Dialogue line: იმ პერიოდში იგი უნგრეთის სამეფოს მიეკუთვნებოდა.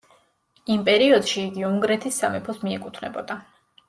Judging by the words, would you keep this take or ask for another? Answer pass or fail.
pass